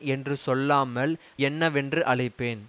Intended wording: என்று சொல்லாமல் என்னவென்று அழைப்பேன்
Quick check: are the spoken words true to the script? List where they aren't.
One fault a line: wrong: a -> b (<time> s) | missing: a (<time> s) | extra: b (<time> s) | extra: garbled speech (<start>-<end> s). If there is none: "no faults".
no faults